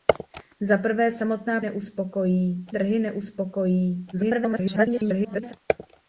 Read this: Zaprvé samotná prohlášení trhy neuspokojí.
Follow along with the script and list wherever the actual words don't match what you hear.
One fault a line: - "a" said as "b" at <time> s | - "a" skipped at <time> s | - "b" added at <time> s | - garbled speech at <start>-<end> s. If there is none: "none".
- "prohlášení" said as "neuspokojí" at 1.6 s
- garbled speech at 4.1-5.5 s